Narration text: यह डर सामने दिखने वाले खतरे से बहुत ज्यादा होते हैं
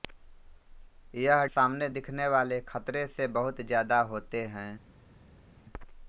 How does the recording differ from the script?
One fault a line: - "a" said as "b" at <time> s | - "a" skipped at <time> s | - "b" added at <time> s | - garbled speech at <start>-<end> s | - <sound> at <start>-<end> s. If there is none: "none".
- "डर" skipped at 1.4 s